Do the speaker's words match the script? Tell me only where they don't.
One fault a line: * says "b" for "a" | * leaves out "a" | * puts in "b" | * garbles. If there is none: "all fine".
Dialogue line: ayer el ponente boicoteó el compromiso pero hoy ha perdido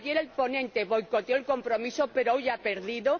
all fine